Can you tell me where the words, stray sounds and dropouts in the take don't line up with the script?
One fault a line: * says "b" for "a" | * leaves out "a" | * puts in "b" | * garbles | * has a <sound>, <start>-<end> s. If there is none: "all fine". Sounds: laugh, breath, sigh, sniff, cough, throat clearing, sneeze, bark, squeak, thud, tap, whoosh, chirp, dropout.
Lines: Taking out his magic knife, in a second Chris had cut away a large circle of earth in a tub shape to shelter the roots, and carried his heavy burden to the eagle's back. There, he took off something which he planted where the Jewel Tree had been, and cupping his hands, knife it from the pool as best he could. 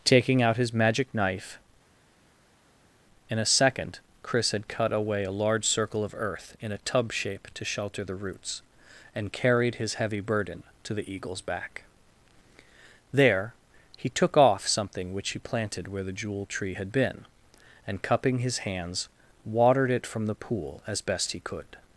* says "watered" for "knife"